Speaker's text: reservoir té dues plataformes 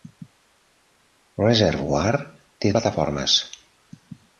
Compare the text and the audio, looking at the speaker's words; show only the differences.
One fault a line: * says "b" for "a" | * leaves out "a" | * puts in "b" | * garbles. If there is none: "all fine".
* leaves out "dues"